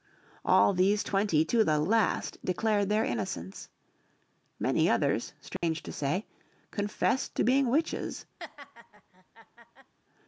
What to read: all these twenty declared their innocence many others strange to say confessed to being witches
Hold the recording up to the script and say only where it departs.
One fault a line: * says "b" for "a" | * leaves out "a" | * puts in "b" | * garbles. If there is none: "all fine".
* puts in "to the last"